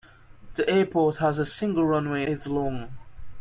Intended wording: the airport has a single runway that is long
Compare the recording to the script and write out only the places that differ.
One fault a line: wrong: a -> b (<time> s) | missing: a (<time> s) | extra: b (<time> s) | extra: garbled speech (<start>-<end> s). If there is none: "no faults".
missing: that (2.2 s)